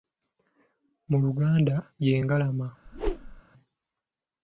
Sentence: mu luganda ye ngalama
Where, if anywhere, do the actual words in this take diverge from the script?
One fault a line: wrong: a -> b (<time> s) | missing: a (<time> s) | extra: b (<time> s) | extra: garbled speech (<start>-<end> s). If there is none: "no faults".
no faults